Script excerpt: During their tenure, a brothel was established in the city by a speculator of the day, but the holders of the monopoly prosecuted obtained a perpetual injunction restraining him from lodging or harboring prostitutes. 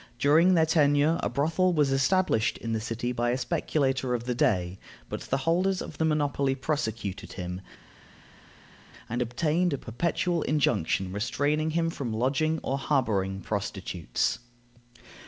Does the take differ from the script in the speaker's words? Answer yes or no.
yes